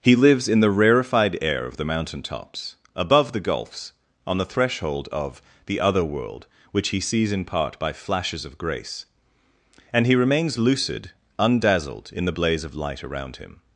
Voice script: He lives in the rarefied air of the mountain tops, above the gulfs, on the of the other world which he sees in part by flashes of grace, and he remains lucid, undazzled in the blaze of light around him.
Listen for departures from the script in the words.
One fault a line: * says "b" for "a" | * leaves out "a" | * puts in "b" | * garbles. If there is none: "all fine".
* puts in "threshold"